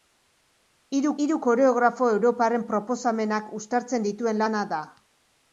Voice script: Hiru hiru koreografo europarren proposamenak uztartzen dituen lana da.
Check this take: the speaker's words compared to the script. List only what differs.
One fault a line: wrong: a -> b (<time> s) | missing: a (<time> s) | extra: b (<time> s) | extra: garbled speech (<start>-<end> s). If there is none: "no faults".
no faults